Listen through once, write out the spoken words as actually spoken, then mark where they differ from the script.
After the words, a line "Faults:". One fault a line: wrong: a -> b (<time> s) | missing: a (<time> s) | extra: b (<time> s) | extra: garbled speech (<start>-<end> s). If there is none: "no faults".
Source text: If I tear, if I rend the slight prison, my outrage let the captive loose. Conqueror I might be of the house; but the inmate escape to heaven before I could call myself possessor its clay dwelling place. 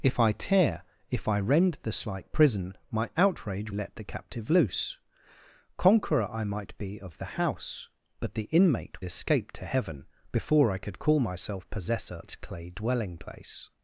If I tear, if I rend the slight prison, my outrage let the captive loose. Conqueror I might be of the house; but the inmate escape to heaven before I could call myself possessor its clay dwelling place.
Faults:
no faults